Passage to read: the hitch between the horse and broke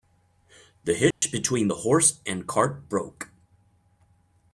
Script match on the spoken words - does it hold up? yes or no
no